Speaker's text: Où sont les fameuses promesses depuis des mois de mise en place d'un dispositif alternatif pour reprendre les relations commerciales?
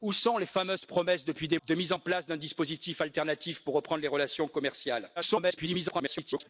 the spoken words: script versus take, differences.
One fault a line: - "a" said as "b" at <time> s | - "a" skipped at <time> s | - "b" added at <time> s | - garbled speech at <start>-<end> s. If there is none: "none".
- "mois" skipped at 1.6 s
- garbled speech at 5.2-6.5 s